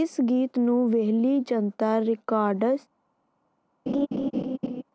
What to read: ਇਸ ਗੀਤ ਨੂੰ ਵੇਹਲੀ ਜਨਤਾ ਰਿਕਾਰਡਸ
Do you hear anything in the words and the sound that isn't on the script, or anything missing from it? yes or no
yes